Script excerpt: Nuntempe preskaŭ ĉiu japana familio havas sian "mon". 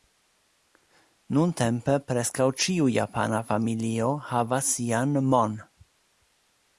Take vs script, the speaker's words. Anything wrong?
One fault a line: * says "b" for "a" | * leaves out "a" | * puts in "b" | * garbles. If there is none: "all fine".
all fine